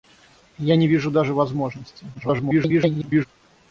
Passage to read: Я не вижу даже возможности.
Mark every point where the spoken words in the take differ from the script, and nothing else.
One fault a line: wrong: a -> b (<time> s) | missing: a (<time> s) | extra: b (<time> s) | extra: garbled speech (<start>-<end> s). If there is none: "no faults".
extra: garbled speech (2.1-3.3 s)